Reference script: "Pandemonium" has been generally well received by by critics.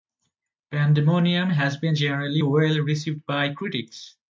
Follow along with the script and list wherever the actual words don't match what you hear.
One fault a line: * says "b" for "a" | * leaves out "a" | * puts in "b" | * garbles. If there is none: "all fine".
* leaves out "by"